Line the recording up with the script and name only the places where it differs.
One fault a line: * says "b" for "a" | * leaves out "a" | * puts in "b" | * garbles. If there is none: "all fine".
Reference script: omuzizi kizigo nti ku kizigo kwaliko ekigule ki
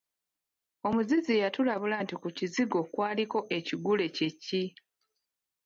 * says "yatulabula" for "kizigo"
* puts in "kye"